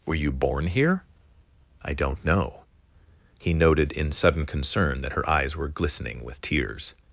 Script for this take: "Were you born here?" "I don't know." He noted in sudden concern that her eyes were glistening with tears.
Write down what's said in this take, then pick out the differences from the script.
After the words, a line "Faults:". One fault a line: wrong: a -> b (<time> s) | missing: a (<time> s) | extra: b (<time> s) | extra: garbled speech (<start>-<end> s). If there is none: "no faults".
"Were you born here?" "I don't know." He noted in sudden concern that her eyes were glistening with tears.
Faults:
no faults